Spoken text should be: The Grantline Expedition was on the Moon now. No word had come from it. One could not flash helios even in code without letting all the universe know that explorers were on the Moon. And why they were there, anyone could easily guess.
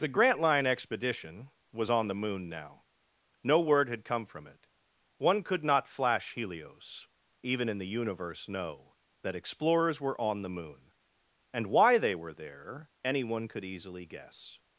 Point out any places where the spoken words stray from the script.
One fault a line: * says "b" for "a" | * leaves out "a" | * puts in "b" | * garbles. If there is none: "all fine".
* leaves out "code without letting all"